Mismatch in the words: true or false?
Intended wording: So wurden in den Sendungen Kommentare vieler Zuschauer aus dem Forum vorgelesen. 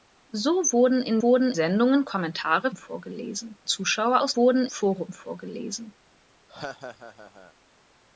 true